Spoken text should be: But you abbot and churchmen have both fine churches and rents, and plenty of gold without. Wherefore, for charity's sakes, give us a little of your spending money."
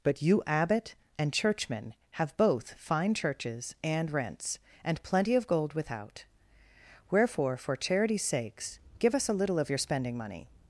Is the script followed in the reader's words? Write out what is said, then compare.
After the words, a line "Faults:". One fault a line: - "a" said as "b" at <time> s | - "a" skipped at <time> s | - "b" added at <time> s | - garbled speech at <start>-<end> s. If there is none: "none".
But you abbot and churchmen have both fine churches and rents, and plenty of gold without. Wherefore, for charity's sakes, give us a little of your spending money."
Faults:
none